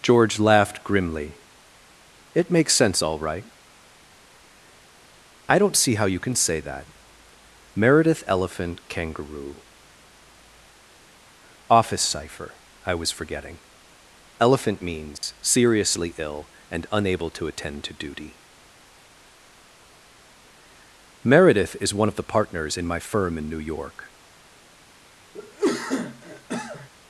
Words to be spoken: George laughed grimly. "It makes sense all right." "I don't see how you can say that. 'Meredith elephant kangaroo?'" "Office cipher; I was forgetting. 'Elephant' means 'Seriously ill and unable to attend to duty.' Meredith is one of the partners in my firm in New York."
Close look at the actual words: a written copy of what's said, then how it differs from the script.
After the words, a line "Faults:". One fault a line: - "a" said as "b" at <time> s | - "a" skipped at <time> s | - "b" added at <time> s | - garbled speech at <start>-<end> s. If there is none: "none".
George laughed grimly. "It makes sense all right." "I don't see how you can say that. 'Meredith elephant kangaroo?'" "Office cipher; I was forgetting. 'Elephant' means 'Seriously ill and unable to attend to duty.' Meredith is one of the partners in my firm in New York."
Faults:
none